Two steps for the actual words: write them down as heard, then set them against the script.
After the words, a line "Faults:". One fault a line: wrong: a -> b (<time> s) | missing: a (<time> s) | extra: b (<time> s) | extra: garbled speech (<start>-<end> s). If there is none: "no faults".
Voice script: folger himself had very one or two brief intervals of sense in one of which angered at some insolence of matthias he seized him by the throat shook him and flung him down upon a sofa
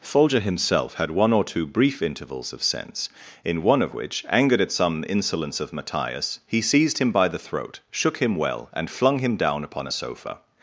folger himself had one or two brief intervals of sense in one of which angered at some insolence of matthias he seized him by the throat shook him well and flung him down upon a sofa
Faults:
missing: very (1.1 s)
extra: well (8.3 s)